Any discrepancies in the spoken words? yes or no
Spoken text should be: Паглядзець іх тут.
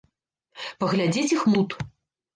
no